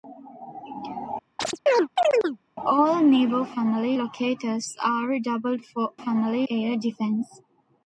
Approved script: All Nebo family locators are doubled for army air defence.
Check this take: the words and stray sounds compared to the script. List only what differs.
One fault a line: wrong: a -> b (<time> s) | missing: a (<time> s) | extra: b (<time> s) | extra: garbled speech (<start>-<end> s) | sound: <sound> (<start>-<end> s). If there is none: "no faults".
sound: chirp (1.4-2.4 s)
wrong: army -> family (5.9 s)